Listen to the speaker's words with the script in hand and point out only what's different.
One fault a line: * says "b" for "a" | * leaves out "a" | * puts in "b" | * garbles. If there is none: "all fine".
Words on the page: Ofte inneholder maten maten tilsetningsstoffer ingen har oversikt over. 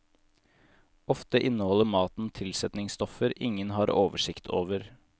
* leaves out "maten"